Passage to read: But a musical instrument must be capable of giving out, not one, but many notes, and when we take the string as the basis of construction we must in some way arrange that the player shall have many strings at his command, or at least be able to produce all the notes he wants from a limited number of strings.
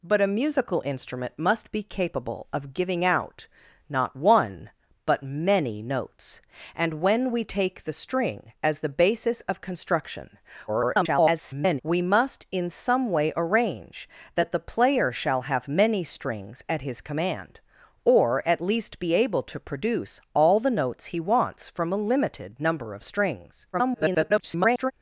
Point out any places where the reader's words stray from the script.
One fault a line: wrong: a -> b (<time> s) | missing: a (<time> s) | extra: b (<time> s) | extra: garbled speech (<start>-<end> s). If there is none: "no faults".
extra: garbled speech (10.7-11.8 s)
extra: garbled speech (23.7-24.9 s)